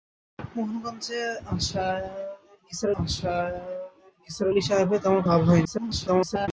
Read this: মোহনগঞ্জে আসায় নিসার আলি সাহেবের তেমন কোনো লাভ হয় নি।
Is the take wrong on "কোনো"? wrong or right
wrong